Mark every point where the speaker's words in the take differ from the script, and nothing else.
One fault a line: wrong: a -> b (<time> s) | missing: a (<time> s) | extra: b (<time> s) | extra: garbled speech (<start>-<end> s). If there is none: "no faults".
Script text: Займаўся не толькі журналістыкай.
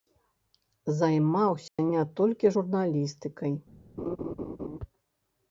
no faults